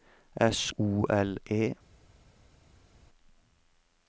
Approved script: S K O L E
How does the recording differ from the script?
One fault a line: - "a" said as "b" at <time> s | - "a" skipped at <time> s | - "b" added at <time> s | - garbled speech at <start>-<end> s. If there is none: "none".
- "K" skipped at 0.7 s